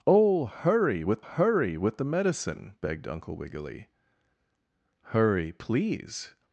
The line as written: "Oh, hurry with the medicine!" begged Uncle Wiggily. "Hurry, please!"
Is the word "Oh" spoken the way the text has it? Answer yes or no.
yes